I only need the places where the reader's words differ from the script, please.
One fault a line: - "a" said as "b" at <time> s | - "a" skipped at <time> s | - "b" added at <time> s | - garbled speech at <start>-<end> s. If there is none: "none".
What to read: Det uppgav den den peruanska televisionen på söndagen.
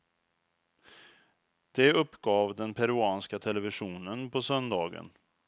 - "den" skipped at 2.7 s